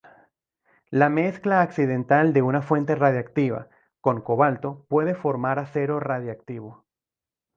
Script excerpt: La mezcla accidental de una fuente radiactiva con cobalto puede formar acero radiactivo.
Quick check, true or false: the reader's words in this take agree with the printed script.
true